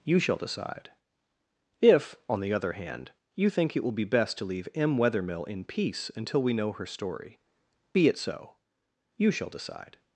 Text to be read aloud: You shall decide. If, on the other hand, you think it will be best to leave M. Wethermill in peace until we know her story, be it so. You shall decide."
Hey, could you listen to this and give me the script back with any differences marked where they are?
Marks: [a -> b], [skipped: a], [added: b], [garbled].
You shall decide. If, on the other hand, you think it will be best to leave M. Wethermill in peace until we know her story, be it so. You shall decide."